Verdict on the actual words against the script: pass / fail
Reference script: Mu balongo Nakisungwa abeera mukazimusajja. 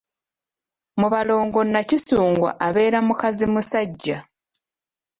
pass